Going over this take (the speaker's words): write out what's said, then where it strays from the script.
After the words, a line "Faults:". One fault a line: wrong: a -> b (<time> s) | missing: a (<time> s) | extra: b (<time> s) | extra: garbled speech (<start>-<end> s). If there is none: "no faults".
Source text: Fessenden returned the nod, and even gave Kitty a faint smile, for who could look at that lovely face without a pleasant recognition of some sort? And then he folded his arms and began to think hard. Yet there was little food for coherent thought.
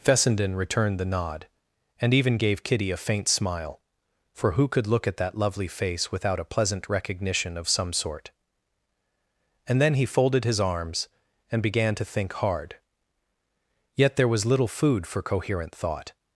Fessenden returned the nod, and even gave Kitty a faint smile, for who could look at that lovely face without a pleasant recognition of some sort? And then he folded his arms and began to think hard. Yet there was little food for coherent thought.
Faults:
no faults